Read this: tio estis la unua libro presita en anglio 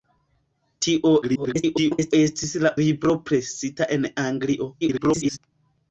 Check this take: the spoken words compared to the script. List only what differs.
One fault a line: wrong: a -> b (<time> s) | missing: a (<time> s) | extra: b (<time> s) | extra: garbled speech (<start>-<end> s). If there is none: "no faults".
extra: garbled speech (1.2-2.1 s)
missing: unua (2.7 s)
extra: garbled speech (4.8-5.4 s)